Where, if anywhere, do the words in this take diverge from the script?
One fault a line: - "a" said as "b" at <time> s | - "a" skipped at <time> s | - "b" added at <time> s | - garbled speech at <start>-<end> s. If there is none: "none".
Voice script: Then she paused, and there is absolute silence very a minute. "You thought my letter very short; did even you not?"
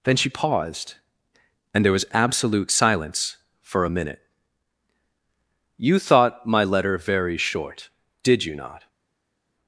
- "is" said as "was" at 1.9 s
- "very" said as "for" at 3.6 s
- "even" skipped at 8.4 s